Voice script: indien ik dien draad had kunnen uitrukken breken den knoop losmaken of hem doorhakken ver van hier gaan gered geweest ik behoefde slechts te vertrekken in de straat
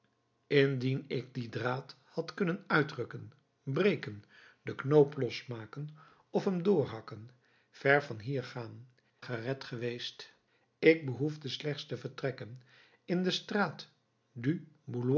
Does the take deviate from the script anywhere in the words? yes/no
no